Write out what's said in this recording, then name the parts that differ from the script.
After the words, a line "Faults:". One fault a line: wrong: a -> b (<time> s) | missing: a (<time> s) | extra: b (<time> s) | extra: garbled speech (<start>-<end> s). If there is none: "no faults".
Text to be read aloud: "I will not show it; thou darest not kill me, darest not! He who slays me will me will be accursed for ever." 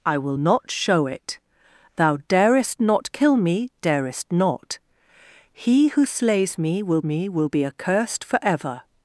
"I will not show it; thou darest not kill me, darest not! He who slays me will me will be accursed for ever."
Faults:
no faults